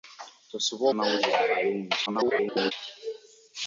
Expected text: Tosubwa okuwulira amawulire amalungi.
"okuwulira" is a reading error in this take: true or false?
true